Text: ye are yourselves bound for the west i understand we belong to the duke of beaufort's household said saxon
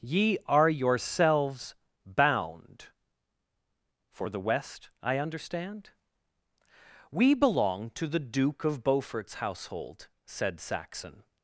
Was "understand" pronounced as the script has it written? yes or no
yes